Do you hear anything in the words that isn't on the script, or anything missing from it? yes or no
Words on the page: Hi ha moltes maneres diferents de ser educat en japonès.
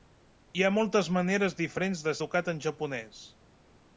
yes